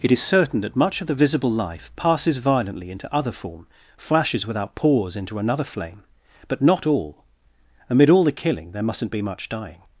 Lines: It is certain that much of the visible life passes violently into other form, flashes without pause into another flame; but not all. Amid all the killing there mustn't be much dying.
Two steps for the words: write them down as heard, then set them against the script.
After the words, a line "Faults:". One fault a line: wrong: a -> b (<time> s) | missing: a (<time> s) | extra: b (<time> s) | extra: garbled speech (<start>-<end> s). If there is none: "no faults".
It is certain that much of the visible life passes violently into other form, flashes without pause into another flame; but not all. Amid all the killing there mustn't be much dying.
Faults:
no faults